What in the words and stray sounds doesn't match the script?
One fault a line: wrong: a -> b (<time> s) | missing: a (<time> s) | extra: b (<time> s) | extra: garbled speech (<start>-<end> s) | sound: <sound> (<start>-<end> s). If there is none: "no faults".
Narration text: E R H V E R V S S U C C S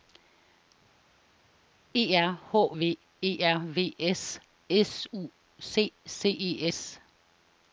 extra: E (6.3 s)